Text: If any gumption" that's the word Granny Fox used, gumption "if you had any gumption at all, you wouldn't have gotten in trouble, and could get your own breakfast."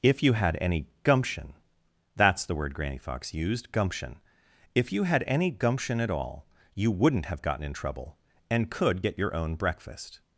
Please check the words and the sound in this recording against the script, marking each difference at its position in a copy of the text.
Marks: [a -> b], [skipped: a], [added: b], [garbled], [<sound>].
If [added: you had] any gumption" that's the word Granny Fox used, gumption "if you had any gumption at all, you wouldn't have gotten in trouble, and could get your own breakfast."